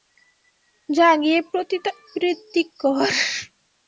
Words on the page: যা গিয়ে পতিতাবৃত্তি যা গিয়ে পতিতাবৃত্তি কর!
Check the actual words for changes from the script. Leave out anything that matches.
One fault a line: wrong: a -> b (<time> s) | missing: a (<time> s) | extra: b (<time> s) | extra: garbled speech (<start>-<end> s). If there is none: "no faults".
missing: যা গিয়ে পতিতাবৃত্তি (2.6 s)